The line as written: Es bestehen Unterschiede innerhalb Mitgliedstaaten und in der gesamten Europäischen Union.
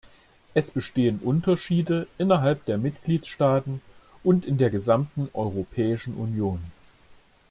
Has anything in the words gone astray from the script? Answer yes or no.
yes